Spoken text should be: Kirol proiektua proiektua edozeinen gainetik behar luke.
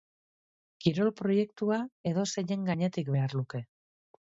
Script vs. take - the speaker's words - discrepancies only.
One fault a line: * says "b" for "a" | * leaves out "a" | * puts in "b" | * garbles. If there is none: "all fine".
* leaves out "proiektua"